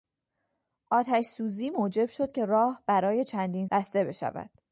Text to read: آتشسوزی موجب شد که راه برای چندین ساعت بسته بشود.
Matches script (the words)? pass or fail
fail